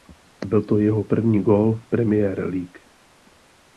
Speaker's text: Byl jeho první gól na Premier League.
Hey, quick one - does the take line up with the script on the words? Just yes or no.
no